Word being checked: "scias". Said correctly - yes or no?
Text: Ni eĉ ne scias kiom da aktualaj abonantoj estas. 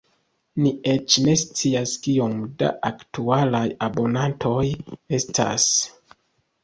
yes